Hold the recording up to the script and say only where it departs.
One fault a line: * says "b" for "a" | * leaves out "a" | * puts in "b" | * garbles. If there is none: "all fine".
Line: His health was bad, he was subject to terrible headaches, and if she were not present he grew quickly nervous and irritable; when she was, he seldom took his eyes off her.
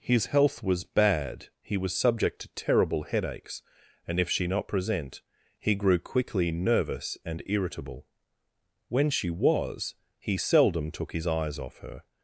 * leaves out "were"